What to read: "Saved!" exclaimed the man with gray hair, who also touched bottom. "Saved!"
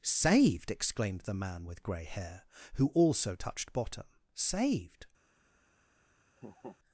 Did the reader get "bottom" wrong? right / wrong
right